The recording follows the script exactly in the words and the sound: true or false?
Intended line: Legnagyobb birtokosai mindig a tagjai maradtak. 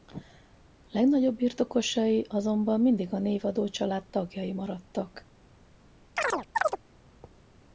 false